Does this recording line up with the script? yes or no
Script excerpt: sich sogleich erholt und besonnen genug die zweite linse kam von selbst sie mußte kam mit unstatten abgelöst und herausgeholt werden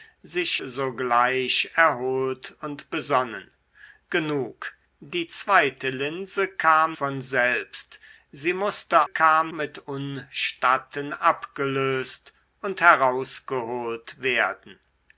yes